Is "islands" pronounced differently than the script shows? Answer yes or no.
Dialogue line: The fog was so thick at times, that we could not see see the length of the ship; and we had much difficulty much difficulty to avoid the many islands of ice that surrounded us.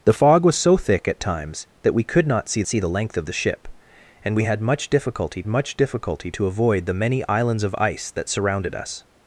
no